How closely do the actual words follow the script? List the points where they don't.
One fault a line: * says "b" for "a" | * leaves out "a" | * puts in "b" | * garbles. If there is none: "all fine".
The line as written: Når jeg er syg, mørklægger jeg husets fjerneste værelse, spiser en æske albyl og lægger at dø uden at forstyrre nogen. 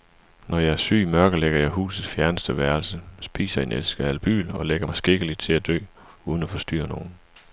* puts in "mig skikkeligt til"